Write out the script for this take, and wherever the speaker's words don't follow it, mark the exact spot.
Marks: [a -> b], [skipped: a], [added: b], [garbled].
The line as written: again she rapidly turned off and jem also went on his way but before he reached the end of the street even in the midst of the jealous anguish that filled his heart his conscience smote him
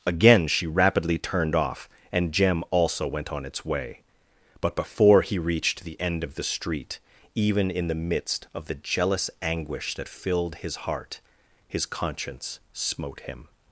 again she rapidly turned off and jem also went on [his -> its] way but before he reached the end of the street even in the midst of the jealous anguish that filled his heart his conscience smote him